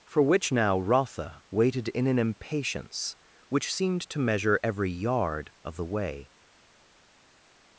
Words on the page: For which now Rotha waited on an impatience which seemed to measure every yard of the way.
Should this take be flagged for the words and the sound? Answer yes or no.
yes